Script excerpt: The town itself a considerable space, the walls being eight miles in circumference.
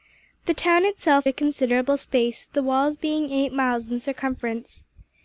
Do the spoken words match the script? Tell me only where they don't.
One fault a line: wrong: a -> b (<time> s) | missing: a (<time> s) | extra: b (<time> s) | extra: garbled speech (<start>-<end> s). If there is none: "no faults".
no faults